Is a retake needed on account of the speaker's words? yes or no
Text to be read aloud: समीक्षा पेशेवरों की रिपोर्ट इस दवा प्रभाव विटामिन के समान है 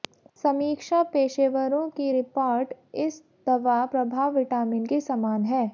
no